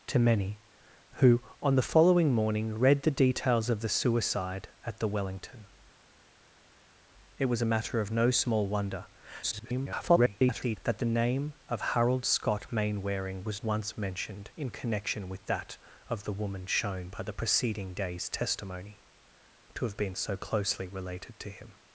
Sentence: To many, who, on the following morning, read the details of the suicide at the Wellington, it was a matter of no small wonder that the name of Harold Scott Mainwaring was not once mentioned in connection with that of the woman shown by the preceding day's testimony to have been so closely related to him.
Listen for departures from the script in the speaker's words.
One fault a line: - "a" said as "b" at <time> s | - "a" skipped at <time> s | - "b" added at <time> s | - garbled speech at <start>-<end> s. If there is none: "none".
- garbled speech at 9.4-10.8 s
- "not" skipped at 13.6 s